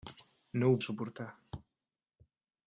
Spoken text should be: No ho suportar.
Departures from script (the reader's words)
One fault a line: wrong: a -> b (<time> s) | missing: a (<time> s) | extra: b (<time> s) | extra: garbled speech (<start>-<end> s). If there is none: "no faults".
no faults